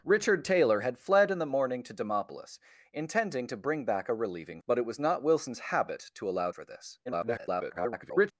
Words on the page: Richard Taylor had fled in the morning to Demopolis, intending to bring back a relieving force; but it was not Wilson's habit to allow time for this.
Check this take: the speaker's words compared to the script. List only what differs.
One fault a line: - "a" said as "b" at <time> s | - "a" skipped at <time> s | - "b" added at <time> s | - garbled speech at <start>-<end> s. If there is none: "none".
- "force" skipped at 4.6 s
- "time" skipped at 6.5 s
- garbled speech at 7.1-8.3 s